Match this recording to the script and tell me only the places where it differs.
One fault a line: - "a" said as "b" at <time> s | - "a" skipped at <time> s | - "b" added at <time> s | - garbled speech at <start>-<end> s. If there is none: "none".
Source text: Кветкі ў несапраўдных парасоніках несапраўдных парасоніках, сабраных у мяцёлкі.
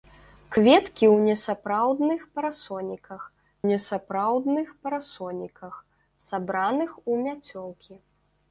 none